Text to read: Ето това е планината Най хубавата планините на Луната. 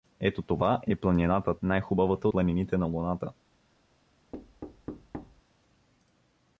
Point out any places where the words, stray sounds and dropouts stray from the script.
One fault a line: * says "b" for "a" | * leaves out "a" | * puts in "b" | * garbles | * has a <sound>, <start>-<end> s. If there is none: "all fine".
* has a thud, 4.3-5.4 s